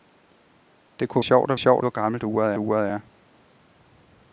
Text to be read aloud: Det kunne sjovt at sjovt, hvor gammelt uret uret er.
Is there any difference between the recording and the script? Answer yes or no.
no